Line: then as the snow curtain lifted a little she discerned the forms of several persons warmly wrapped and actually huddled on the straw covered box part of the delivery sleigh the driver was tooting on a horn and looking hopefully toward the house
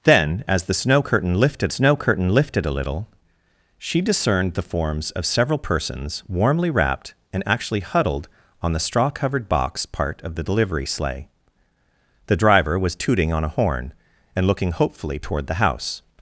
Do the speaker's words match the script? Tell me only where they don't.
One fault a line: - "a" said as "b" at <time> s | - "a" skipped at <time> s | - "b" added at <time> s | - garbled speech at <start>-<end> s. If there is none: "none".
- "snow curtain lifted" added at 1.7 s